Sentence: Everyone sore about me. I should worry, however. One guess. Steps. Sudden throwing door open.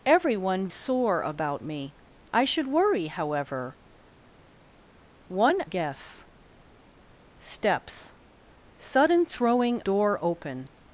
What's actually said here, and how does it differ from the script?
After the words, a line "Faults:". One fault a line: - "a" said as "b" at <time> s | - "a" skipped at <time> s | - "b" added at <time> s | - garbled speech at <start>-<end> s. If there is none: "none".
Everyone sore about me. I should worry, however. One guess. Steps. Sudden throwing door open.
Faults:
none